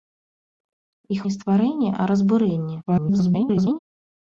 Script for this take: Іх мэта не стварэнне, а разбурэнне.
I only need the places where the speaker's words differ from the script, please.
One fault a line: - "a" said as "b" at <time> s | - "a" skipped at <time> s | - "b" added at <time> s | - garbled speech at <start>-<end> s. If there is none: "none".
- "мэта" skipped at 1.2 s
- garbled speech at 2.9-3.8 s